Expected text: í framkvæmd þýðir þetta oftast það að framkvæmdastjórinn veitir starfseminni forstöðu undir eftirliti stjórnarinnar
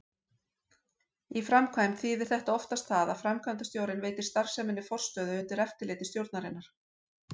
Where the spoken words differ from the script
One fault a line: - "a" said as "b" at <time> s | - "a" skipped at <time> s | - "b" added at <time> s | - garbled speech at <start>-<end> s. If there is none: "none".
none